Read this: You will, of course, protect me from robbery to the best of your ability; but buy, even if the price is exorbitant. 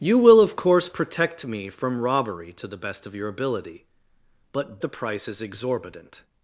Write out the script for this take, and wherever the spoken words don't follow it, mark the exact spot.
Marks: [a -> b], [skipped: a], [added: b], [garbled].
You will, of course, protect me from robbery to the best of your ability; but [skipped: buy, even if] the price is exorbitant.